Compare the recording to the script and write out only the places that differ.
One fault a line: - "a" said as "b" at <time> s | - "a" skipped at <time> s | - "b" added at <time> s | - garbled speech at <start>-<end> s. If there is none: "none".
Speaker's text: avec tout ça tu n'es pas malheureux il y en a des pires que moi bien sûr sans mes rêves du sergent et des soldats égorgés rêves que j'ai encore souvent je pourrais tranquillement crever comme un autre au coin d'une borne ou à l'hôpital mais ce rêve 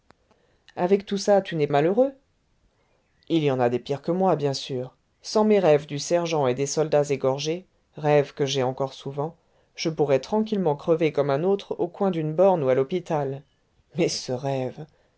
- "pas" skipped at 1.7 s